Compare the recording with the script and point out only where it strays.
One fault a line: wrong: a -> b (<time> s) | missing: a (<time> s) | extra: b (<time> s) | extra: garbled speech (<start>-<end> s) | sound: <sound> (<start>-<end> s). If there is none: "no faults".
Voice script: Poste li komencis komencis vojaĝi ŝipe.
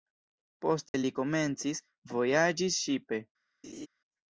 sound: dropout (0.9-0.9 s)
missing: komencis (1.8 s)
sound: laugh (3.6-3.9 s)